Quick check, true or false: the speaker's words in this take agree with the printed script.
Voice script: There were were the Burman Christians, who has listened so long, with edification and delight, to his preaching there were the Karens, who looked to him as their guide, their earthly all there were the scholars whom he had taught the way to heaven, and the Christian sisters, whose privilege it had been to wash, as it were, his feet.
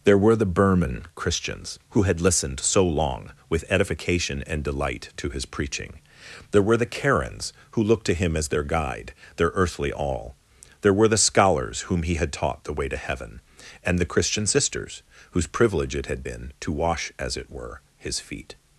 false